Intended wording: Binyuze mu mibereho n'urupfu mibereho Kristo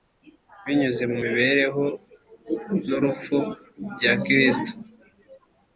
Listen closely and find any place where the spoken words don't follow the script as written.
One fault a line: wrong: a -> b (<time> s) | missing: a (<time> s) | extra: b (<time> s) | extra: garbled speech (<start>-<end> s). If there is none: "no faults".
wrong: mibereho -> bya (3.9 s)